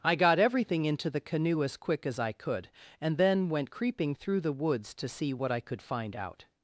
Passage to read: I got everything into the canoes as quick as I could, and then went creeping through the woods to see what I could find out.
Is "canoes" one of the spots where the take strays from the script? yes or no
yes